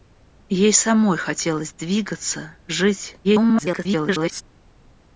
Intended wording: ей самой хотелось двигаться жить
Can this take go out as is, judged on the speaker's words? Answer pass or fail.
fail